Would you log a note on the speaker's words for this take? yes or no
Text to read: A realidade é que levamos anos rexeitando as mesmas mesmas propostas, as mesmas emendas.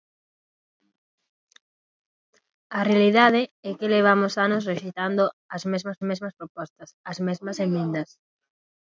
no